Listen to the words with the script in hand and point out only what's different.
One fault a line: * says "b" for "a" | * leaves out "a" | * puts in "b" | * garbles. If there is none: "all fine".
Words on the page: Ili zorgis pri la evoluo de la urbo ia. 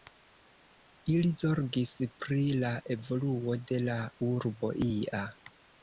all fine